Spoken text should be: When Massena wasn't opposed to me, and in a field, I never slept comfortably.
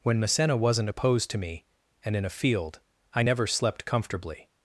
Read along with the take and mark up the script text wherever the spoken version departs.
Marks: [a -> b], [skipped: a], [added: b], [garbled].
When Massena wasn't opposed to me, and in a field, I never slept comfortably.